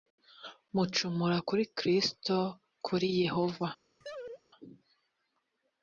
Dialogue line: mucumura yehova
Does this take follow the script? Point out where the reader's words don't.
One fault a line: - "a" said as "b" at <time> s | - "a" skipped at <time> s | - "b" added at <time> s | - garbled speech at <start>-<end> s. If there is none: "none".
- "kuri kristo kuri" added at 1.5 s